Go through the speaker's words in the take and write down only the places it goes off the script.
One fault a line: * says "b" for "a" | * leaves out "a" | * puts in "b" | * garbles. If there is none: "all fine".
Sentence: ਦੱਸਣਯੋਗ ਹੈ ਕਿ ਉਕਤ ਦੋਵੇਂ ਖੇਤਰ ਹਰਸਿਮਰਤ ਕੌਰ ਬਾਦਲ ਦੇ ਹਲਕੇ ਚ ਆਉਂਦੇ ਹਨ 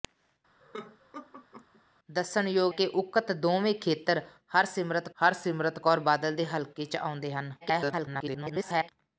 * leaves out "ਹੈ"
* puts in "ਹਰਸਿਮਰਤ"
* garbles